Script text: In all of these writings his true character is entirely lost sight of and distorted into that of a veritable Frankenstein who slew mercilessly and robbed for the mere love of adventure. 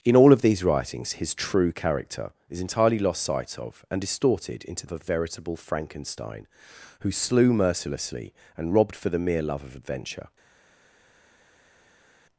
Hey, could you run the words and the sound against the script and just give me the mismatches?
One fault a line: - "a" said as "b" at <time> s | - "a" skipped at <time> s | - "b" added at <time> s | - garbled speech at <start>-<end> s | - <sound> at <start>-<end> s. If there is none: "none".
- "that" skipped at 4.9 s